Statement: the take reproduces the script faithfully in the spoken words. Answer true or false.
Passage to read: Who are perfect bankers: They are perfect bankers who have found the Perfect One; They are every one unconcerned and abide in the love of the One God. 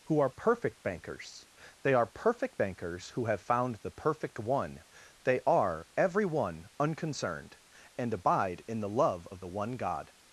true